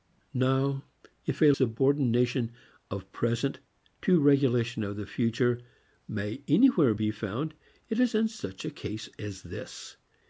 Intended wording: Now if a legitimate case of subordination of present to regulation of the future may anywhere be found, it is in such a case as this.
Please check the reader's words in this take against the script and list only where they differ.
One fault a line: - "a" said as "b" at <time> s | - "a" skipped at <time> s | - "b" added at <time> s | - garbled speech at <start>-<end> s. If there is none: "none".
- "legitimate case of" skipped at 1.5 s